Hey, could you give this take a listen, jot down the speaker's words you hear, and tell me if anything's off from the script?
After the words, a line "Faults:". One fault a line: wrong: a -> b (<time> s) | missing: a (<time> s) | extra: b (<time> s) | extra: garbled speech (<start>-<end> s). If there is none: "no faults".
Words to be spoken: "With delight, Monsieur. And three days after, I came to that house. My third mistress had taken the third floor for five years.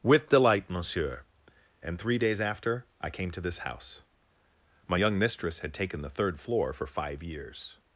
"With delight, Monsieur. And three days after, I came to this house. My young mistress had taken the third floor for five years.
Faults:
wrong: that -> this (3.4 s)
wrong: third -> young (4.9 s)